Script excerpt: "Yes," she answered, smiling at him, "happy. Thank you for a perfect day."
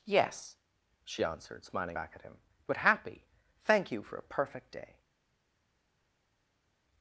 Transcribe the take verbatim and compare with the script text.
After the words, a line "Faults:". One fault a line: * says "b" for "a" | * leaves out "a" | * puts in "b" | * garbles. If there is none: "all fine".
"Yes," she answered, smiling back at him, "but happy. Thank you for a perfect day."
Faults:
* puts in "back"
* puts in "but"